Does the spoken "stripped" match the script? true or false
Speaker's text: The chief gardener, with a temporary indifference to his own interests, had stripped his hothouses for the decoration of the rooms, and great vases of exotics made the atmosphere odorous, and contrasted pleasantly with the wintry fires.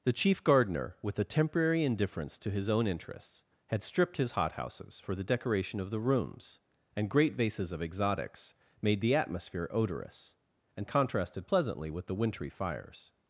true